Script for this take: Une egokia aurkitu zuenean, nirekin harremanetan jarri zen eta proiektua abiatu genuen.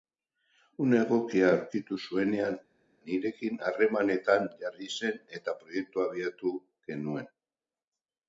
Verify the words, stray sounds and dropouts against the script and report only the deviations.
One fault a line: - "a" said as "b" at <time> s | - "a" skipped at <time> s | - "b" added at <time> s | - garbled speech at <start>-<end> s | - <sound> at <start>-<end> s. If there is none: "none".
none